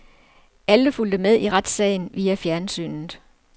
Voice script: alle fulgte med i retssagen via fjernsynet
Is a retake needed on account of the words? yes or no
no